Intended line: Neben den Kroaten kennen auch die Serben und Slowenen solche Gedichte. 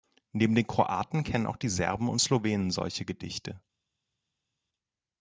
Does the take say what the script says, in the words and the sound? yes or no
yes